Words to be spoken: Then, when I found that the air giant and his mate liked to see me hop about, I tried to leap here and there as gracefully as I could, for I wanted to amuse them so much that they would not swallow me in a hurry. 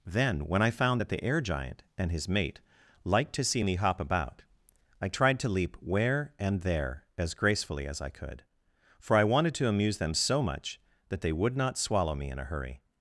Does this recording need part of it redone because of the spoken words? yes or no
yes